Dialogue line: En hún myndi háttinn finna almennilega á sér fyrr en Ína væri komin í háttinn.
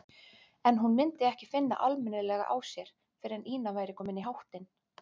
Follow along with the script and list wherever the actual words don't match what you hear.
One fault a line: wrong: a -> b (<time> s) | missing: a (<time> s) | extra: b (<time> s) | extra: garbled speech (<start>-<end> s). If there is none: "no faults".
wrong: háttinn -> ekki (1.3 s)